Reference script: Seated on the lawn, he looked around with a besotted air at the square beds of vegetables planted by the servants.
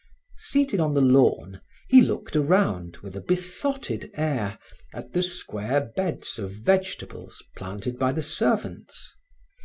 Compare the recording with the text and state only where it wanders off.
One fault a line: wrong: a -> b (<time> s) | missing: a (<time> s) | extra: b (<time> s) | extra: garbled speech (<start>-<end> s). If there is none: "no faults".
no faults